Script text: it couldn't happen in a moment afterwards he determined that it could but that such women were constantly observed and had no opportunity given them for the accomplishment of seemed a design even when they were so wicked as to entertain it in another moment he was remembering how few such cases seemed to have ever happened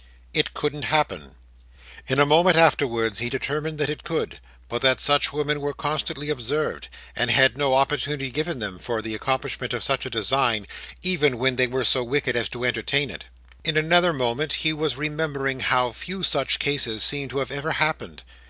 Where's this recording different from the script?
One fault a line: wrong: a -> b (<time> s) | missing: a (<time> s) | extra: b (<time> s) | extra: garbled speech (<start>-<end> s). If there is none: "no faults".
wrong: seemed -> such (9.8 s)